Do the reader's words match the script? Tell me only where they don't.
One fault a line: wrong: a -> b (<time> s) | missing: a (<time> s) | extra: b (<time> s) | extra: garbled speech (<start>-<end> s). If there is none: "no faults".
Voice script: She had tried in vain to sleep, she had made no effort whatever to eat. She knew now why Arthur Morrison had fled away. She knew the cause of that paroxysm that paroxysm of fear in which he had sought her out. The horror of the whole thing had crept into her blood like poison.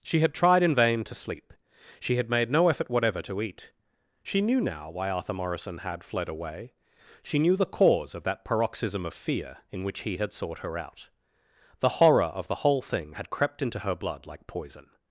missing: that paroxysm (9.1 s)